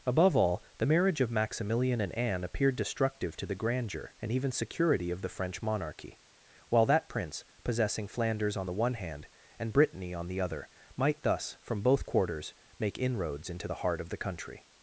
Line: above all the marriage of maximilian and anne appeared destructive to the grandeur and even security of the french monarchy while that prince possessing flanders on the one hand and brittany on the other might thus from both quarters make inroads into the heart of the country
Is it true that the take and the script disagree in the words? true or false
false